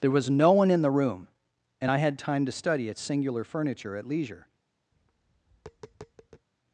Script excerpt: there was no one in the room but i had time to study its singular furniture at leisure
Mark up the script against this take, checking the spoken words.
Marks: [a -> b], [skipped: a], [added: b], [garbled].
there was no one in the room [but -> and] i had time to study its singular furniture at leisure